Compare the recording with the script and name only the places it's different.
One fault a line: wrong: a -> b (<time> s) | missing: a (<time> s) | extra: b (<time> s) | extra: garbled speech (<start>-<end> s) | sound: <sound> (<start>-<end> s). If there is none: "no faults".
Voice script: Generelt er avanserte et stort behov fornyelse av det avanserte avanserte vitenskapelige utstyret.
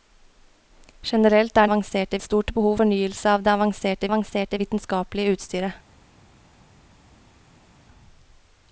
no faults